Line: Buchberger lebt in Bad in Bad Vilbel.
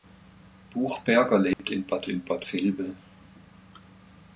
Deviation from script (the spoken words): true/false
false